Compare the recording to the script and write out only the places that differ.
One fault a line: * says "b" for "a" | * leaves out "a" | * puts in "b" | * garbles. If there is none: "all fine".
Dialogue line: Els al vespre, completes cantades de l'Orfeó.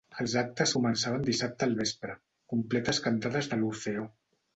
* puts in "actes començaven dissabte"